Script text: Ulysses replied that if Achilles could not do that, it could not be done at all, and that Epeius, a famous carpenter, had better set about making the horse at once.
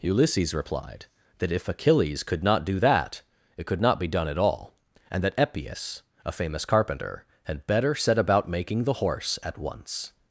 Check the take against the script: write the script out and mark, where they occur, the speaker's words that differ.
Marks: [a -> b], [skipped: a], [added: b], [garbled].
Ulysses replied that if Achilles could not do that, it could not be done at all, and that Epeius, a famous carpenter, had better set about making the horse at once.